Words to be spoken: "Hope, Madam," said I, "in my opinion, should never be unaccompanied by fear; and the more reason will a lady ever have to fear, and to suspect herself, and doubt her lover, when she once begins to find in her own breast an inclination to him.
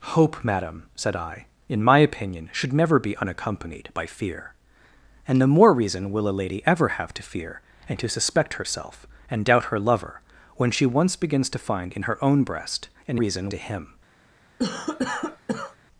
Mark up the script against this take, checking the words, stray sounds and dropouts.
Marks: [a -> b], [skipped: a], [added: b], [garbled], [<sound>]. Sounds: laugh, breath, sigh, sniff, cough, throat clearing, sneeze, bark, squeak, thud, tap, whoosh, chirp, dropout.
"Hope, Madam," said I, "in my opinion, should never be unaccompanied by fear; and the more reason will a lady ever have to fear, and to suspect herself, and doubt her lover, when she once begins to find in her own breast an [inclination -> reason] to him. [cough]